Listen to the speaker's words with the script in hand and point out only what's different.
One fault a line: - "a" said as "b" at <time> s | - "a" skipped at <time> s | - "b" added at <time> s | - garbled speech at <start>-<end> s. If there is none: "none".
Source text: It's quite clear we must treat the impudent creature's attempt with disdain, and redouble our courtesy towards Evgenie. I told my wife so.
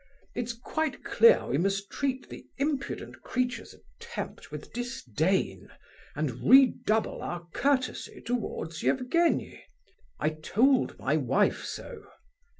none